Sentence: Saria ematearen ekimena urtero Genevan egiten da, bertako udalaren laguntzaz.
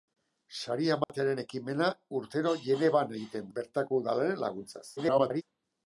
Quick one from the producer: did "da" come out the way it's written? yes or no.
no